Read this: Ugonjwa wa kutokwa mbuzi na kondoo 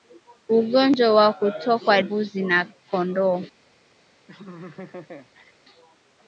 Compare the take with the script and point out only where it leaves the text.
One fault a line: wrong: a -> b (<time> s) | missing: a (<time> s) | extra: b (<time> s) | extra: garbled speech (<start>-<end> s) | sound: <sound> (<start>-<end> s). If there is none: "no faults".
sound: laugh (4.3-5.5 s)